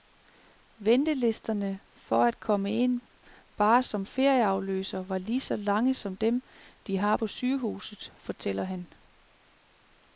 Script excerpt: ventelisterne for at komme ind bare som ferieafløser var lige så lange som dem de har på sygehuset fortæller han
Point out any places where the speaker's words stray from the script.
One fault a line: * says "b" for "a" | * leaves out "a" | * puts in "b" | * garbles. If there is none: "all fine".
all fine